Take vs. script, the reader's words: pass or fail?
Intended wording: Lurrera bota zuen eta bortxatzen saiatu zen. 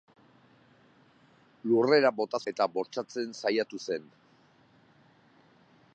fail